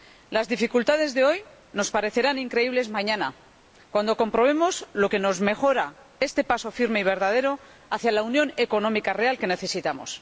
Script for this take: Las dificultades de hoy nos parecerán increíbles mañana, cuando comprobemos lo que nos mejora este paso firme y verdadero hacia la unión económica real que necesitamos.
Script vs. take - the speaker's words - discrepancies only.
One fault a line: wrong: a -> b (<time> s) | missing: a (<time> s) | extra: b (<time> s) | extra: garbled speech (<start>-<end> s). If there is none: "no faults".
no faults